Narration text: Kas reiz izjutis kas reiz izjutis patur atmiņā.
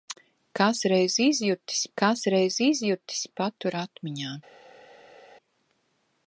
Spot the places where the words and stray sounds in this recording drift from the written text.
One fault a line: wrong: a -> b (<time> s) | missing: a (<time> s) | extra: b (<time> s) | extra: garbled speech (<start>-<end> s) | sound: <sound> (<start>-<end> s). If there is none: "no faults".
no faults